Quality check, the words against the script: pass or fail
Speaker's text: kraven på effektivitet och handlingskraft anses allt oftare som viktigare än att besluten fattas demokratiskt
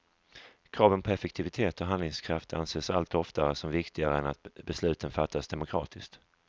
pass